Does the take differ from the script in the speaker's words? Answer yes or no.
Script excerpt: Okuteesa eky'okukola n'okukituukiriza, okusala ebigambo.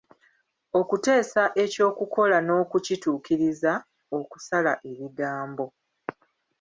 no